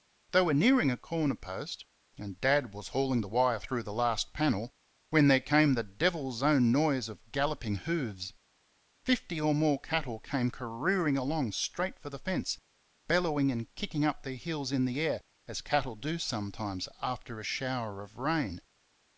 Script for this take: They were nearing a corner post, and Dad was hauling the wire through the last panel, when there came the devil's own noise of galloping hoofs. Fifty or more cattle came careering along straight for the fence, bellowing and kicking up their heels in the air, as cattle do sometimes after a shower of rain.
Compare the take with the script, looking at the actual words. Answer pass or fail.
pass